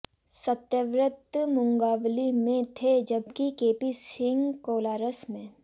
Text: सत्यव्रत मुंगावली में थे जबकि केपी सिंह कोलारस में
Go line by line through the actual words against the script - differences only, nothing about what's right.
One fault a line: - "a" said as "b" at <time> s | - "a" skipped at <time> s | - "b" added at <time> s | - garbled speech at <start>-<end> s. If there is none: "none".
none